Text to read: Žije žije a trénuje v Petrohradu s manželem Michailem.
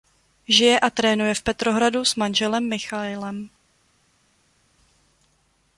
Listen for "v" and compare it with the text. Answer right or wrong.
right